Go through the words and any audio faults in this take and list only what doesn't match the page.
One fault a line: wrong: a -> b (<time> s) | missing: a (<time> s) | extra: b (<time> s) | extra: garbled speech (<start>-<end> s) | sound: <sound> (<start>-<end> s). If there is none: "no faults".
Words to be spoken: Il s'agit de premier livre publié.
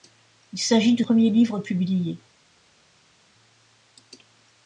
no faults